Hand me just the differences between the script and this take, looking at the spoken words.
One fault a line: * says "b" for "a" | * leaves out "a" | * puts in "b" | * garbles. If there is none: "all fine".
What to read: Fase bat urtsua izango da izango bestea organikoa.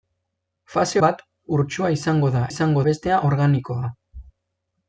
all fine